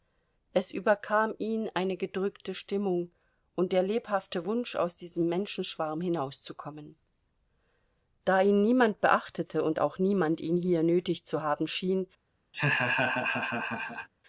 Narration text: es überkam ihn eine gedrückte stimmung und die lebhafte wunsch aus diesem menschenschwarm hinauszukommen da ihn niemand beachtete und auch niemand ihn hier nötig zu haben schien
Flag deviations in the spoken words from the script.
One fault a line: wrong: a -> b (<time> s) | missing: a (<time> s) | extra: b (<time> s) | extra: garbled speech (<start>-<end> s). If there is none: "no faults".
wrong: die -> der (3.7 s)